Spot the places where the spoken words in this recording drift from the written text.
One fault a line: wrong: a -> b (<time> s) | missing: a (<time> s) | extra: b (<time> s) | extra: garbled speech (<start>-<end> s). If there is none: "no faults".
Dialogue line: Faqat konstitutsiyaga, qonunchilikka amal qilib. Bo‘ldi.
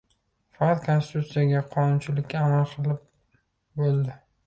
no faults